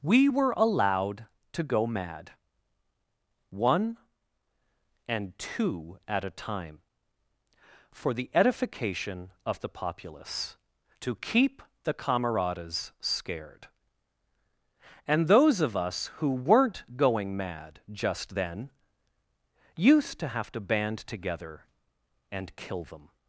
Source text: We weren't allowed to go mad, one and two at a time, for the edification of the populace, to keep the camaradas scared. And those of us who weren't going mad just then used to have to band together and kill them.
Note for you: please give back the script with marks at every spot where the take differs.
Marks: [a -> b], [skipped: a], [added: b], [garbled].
We [weren't -> were] allowed to go mad, one and two at a time, for the edification of the populace, to keep the camaradas scared. And those of us who weren't going mad just then used to have to band together and kill them.